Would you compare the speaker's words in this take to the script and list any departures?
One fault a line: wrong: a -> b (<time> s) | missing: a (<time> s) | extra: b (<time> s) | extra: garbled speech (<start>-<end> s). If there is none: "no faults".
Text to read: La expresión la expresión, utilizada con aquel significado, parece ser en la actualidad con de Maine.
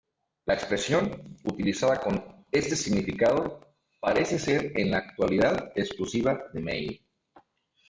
missing: la expresión (1.2 s)
wrong: aquel -> este (2.5 s)
wrong: con -> exclusiva (5.7 s)